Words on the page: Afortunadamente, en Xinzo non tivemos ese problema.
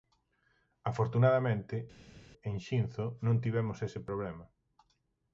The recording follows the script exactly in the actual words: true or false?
true